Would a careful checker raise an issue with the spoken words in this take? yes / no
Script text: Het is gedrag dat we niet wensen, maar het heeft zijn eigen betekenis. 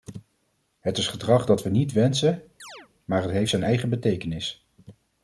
no